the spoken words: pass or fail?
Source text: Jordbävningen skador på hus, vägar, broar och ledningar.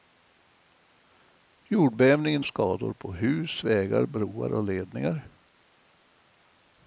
pass